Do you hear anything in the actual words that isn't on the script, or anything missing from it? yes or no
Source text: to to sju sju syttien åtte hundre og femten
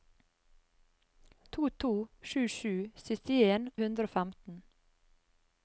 yes